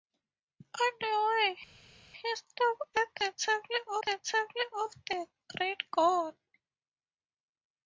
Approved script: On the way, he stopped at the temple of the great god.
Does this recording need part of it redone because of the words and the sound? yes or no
yes